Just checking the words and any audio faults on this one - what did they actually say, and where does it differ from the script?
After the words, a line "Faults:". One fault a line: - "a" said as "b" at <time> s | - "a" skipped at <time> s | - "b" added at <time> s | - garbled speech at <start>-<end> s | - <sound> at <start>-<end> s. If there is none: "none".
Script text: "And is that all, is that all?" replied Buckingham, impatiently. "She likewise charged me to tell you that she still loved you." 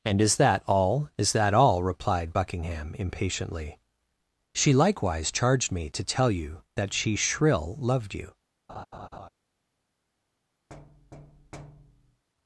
"And is that all, is that all?" replied Buckingham, impatiently. "She likewise charged me to tell you that she shrill loved you."
Faults:
- "still" said as "shrill" at 7.2 s
- laugh at 8.7-9.3 s
- thud at 10.7-12.2 s